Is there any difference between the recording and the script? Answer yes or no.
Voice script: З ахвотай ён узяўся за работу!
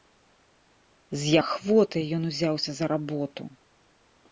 no